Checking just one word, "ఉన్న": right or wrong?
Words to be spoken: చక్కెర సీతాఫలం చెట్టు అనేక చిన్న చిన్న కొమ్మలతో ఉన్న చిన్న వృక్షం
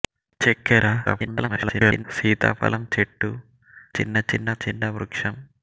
wrong